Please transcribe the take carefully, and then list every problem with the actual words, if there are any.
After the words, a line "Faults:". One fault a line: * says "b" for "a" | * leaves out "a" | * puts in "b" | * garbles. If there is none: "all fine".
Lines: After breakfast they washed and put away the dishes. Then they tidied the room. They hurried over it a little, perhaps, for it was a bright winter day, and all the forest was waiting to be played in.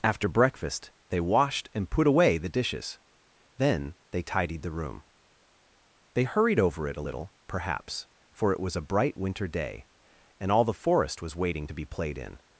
After breakfast they washed and put away the dishes. Then they tidied the room. They hurried over it a little, perhaps, for it was a bright winter day, and all the forest was waiting to be played in.
Faults:
all fine